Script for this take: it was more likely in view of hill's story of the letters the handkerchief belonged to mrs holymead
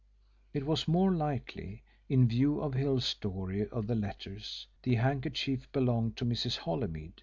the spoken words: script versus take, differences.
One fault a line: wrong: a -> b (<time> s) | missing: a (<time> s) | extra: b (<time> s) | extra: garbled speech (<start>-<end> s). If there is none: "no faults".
no faults